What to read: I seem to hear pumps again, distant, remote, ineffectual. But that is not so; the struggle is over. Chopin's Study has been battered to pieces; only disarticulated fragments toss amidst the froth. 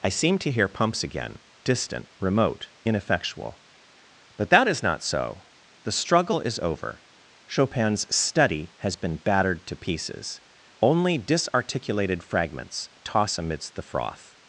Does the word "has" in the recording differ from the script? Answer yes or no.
no